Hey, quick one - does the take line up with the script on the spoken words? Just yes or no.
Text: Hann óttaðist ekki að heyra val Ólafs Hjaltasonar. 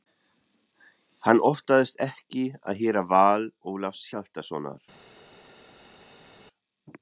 yes